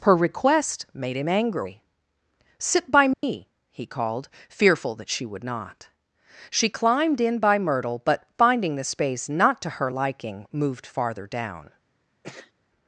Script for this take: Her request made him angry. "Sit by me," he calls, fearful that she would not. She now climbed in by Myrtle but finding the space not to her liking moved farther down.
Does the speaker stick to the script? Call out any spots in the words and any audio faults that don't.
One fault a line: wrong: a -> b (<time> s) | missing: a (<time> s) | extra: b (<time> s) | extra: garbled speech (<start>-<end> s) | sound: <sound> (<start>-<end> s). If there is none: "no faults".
sound: dropout (3.1-3.2 s)
wrong: calls -> called (3.9 s)
missing: now (6.7 s)
sound: sneeze (12.2-12.5 s)